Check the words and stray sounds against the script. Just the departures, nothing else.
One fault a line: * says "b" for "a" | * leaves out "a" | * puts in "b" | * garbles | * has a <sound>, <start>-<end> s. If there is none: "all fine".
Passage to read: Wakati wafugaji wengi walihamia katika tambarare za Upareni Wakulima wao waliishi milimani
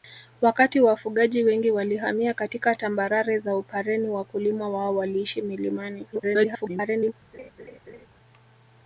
* garbles
* has a laugh, 7.3-8.1 s